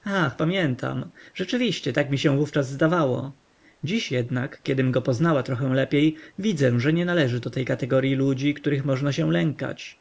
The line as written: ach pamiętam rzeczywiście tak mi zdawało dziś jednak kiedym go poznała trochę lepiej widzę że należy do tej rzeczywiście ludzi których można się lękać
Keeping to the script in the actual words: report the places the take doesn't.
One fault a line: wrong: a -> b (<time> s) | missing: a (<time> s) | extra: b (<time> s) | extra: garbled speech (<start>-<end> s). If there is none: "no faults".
extra: się wówczas (2.2 s)
extra: nie (6.9 s)
wrong: rzeczywiście -> kategoryi (7.6 s)